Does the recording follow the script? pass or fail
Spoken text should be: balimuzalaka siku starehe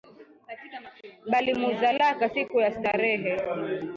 fail